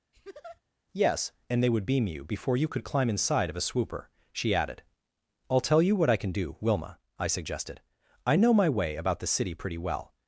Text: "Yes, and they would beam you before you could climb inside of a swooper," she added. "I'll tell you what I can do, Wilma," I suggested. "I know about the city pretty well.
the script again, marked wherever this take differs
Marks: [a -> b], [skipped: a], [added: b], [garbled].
"Yes, and they would beam you before you could climb inside of a swooper," she added. "I'll tell you what I can do, Wilma," I suggested. "I know [added: my way] about the city pretty well.